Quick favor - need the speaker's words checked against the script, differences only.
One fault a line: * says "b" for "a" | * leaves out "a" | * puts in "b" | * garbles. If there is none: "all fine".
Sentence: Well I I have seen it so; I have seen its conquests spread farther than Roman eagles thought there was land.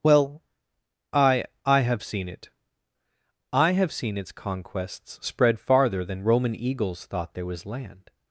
* leaves out "so"